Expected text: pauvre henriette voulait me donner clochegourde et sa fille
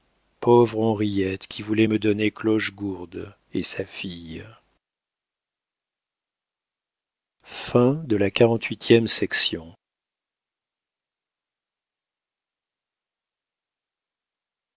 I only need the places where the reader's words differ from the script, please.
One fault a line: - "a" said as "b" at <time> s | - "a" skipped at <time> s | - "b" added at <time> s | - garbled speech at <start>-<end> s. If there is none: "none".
- "qui" added at 1.4 s